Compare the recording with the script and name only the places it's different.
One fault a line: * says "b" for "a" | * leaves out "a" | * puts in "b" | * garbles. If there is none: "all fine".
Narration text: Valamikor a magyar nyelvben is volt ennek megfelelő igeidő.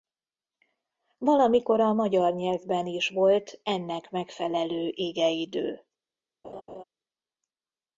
all fine